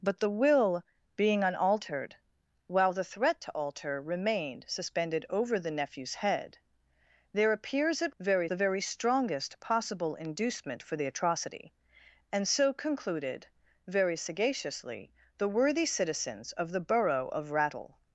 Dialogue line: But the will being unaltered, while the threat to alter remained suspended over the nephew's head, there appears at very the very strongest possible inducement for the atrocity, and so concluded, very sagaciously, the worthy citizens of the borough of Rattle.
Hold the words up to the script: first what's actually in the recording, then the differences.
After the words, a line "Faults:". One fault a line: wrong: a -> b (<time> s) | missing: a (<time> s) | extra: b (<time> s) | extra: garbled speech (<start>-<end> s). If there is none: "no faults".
But the will being unaltered, while the threat to alter remained suspended over the nephew's head, there appears at very the very strongest possible inducement for the atrocity, and so concluded, very sagaciously, the worthy citizens of the borough of Rattle.
Faults:
no faults